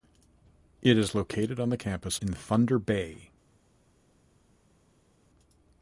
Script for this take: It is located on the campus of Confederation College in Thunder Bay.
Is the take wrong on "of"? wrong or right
wrong